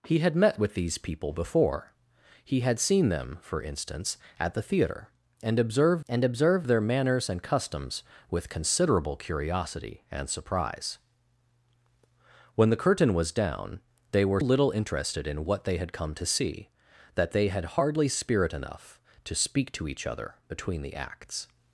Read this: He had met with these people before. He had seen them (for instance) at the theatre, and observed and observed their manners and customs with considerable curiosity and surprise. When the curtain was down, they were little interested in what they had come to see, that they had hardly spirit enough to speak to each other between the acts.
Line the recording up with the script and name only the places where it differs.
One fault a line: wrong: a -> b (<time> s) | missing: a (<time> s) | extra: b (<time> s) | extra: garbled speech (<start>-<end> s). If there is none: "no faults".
no faults